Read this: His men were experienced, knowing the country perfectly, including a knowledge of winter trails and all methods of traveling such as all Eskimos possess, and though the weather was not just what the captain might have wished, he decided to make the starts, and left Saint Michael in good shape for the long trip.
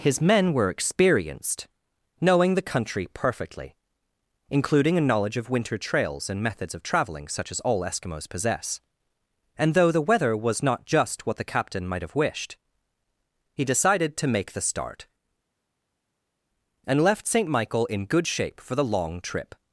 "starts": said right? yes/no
no